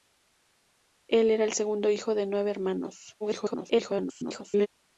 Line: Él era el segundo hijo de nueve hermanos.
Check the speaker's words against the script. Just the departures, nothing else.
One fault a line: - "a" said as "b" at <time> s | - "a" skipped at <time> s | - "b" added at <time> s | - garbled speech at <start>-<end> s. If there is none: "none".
- garbled speech at 3.2-4.7 s